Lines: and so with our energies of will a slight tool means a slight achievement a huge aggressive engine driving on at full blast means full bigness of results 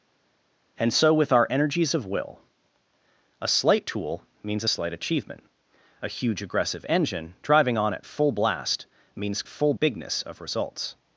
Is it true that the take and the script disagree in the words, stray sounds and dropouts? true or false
false